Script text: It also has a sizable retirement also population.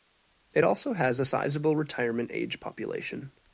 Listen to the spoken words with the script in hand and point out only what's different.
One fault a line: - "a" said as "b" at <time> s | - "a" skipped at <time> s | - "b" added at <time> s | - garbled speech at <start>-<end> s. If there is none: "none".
- "also" said as "age" at 2.3 s